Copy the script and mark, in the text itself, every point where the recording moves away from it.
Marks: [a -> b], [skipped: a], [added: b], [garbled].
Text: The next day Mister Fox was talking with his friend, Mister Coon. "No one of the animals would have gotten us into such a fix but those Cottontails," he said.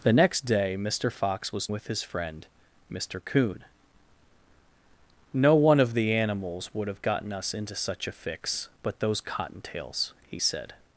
The next day Mister Fox was [skipped: talking] with his friend, Mister Coon. "No one of the animals would have gotten us into such a fix but those Cottontails," he said.